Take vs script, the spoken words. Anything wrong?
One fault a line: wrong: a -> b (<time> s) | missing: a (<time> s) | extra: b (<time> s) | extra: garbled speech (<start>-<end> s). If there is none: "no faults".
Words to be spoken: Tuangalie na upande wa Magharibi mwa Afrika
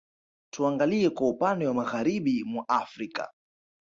wrong: na -> kwa (1.1 s)